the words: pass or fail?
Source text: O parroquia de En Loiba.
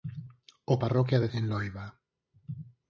pass